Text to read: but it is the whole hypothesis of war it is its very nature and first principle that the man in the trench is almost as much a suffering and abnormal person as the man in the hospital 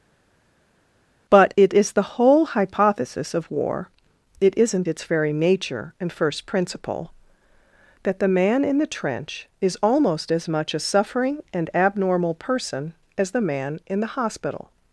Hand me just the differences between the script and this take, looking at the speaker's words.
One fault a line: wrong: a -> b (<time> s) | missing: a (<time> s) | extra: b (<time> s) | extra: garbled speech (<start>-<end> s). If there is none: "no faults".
wrong: is -> isn't (4.6 s)